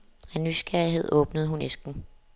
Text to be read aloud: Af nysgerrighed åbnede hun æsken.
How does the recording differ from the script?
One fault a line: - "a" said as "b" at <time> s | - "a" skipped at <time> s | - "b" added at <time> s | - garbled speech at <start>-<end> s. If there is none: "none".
none